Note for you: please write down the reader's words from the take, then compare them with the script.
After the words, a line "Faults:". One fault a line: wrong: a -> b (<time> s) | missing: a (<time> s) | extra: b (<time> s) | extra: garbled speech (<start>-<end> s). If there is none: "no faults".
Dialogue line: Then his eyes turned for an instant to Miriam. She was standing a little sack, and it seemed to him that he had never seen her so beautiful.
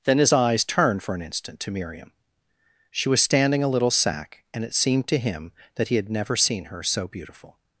Then his eyes turned for an instant to Miriam. She was standing a little sack, and it seemed to him that he had never seen her so beautiful.
Faults:
no faults